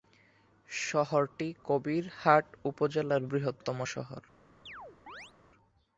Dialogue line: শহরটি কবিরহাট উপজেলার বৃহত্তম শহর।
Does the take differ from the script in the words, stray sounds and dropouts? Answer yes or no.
yes